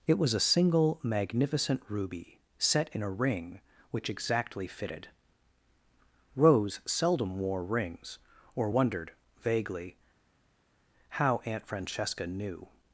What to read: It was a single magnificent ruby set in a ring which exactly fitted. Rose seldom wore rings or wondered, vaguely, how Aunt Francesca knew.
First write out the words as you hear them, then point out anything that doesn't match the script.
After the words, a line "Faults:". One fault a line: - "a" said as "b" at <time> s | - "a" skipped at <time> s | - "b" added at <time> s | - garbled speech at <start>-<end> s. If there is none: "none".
It was a single magnificent ruby set in a ring which exactly fitted. Rose seldom wore rings or wondered, vaguely, how Aunt Francesca knew.
Faults:
none